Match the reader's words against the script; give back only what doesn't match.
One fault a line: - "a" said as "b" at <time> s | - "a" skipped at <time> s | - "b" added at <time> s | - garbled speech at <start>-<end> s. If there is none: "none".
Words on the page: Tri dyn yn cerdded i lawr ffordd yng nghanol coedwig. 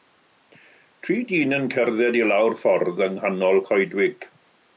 none